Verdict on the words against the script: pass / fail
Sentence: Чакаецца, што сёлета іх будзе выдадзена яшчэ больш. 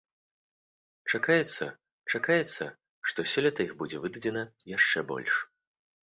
fail